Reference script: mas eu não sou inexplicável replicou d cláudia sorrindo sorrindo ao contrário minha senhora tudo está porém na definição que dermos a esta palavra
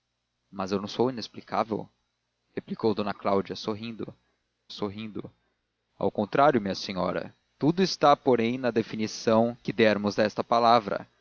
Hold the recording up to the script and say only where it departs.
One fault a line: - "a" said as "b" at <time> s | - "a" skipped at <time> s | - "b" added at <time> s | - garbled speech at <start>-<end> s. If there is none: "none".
none